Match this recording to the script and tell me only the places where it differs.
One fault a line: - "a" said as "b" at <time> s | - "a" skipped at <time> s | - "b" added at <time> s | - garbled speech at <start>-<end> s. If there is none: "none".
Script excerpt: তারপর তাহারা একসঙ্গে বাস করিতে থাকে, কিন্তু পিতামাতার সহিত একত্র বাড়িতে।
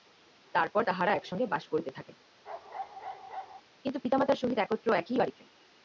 - "একই" added at 5.0 s